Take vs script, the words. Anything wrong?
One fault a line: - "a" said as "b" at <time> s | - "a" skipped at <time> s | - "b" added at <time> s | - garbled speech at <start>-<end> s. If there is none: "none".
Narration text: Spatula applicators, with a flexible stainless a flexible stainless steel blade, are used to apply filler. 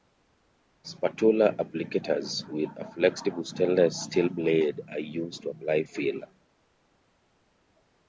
- "a flexible stainless" skipped at 4.0 s